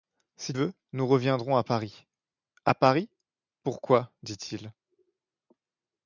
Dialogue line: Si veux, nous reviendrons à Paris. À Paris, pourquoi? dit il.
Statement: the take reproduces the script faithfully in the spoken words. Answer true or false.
true